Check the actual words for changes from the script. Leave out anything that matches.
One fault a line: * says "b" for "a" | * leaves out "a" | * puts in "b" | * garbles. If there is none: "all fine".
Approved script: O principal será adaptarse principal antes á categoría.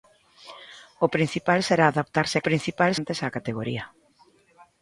all fine